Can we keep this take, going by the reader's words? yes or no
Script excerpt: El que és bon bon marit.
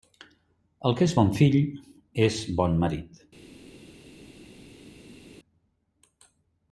no